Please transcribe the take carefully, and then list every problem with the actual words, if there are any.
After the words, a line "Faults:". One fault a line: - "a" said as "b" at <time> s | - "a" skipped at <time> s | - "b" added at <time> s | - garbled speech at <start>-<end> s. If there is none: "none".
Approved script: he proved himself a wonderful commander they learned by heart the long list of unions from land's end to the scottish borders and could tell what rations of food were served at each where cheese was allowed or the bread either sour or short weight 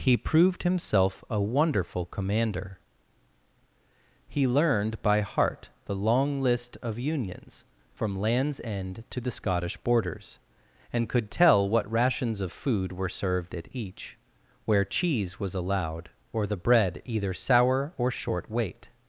he proved himself a wonderful commander he learned by heart the long list of unions from land's end to the scottish borders and could tell what rations of food were served at each where cheese was allowed or the bread either sour or short weight
Faults:
- "they" said as "he" at 4.3 s